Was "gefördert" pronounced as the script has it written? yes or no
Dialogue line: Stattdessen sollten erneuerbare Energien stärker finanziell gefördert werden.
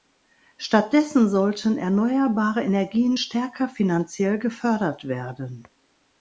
yes